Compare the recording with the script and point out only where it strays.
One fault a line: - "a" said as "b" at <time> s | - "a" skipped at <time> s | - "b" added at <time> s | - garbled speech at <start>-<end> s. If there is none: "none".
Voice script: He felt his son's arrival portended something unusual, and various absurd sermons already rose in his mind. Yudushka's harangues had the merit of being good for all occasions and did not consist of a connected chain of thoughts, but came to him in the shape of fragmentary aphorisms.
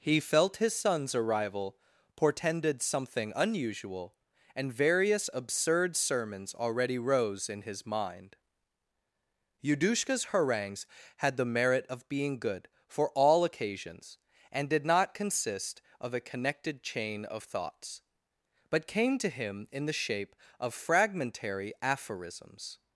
none